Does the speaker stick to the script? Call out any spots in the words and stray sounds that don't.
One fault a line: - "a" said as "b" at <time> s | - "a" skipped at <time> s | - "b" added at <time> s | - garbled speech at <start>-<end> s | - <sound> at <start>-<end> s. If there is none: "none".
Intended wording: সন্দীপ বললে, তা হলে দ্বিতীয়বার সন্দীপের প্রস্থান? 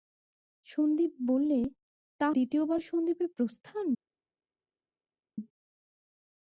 - "হলে" skipped at 2.3 s